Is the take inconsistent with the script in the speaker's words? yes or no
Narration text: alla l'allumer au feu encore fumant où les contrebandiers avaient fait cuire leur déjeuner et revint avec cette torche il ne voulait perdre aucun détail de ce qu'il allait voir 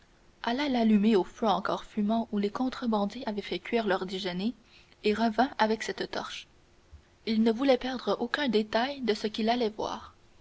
no